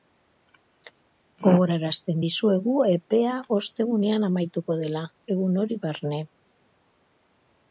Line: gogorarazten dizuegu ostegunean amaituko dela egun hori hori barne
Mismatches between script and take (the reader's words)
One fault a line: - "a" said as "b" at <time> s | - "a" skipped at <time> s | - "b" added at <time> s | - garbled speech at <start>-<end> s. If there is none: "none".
- "epea" added at 2.9 s
- "hori" skipped at 5.8 s